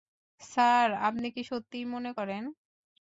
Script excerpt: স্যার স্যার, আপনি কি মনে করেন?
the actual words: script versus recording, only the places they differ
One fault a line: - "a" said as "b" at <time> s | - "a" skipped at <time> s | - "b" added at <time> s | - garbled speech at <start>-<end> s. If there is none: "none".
- "স্যার" skipped at 0.9 s
- "সত্যিই" added at 1.5 s